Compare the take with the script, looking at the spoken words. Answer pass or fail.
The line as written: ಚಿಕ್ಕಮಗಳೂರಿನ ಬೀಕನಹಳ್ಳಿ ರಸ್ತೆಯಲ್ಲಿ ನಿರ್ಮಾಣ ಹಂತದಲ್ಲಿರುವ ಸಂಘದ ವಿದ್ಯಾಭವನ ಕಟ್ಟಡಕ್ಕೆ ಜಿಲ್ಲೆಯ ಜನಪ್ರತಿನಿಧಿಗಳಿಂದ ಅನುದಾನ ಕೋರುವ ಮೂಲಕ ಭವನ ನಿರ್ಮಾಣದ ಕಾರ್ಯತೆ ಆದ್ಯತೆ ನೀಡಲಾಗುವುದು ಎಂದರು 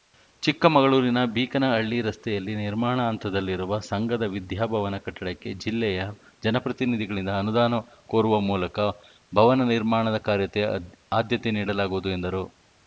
pass